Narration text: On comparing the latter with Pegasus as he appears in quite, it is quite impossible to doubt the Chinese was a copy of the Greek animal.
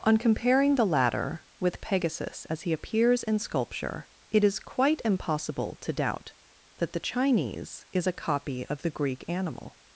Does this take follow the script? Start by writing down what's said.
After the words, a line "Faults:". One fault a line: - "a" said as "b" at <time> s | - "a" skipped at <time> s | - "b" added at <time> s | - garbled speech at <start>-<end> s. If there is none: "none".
On comparing the latter with Pegasus as he appears in sculpture, it is quite impossible to doubt that the Chinese is a copy of the Greek animal.
Faults:
- "quite" said as "sculpture" at 3.4 s
- "that" added at 6.8 s
- "was" said as "is" at 7.9 s